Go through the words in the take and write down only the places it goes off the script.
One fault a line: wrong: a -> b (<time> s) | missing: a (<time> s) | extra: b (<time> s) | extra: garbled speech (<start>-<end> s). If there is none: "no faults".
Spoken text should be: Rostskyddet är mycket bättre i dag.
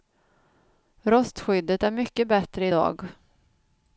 no faults